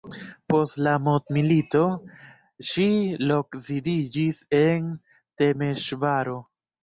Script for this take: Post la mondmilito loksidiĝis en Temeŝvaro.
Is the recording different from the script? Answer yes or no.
yes